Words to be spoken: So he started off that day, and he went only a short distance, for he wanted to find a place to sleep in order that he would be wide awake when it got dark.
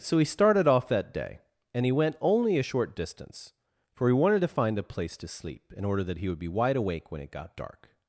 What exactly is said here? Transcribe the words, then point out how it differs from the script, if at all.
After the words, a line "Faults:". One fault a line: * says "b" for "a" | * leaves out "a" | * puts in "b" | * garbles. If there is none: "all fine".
So he started off that day, and he went only a short distance, for he wanted to find a place to sleep in order that he would be wide awake when it got dark.
Faults:
all fine